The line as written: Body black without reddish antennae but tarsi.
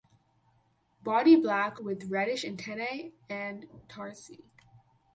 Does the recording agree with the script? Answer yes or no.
no